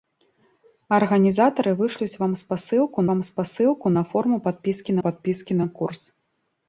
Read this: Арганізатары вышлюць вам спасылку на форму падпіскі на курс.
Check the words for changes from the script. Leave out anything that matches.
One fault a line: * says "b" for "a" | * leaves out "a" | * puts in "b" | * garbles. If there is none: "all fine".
* puts in "вам спасылку"
* puts in "падпіскі"